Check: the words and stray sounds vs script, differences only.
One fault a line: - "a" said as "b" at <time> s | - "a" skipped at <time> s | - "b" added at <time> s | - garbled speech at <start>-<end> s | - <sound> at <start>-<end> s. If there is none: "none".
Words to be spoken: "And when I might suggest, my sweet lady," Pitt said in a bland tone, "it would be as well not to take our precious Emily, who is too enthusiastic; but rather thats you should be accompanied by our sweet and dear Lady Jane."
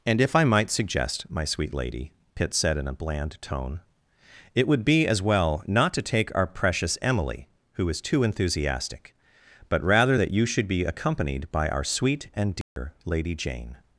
- "when" said as "if" at 0.2 s
- "thats" said as "that" at 10.2 s
- dropout at 12.6-12.8 s